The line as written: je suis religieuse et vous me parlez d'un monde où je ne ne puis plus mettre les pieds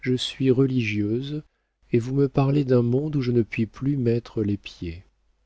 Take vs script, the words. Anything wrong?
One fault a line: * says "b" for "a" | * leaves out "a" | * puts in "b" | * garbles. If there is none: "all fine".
* leaves out "ne"